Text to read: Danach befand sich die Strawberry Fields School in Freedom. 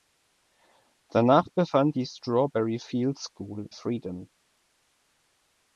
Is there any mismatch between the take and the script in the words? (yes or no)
yes